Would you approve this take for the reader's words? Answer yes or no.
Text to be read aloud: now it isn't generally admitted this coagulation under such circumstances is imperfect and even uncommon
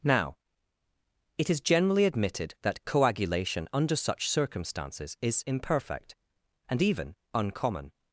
no